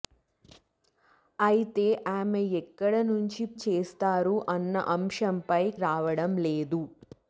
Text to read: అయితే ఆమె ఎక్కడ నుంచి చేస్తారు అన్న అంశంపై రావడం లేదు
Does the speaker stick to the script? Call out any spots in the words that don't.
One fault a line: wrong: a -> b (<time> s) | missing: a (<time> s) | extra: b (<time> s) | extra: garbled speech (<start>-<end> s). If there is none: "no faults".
no faults